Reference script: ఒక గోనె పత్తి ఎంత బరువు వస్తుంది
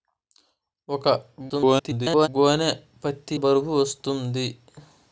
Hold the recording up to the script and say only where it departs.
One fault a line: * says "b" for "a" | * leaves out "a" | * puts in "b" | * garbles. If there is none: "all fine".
* garbles
* leaves out "ఎంత"